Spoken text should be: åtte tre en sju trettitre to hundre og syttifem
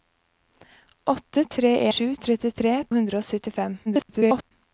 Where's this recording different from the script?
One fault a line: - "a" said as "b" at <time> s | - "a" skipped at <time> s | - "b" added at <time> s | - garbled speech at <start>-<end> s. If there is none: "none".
- "en" skipped at 1.9 s
- "to" skipped at 2.8 s
- garbled speech at 3.9-4.5 s